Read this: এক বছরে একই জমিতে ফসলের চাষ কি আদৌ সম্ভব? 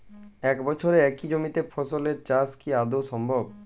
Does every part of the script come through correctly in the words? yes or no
yes